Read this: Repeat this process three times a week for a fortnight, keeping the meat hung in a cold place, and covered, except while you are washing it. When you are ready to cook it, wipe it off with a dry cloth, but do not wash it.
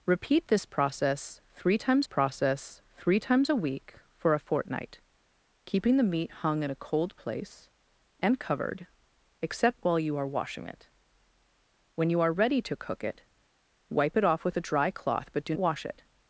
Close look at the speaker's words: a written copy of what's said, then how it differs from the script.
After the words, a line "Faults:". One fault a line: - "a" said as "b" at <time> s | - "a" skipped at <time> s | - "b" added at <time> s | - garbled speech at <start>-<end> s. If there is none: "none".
Repeat this process three times process three times a week for a fortnight, keeping the meat hung in a cold place, and covered, except while you are washing it. When you are ready to cook it, wipe it off with a dry cloth, but do wash it.
Faults:
- "process three times" added at 2.0 s
- "not" skipped at 15.5 s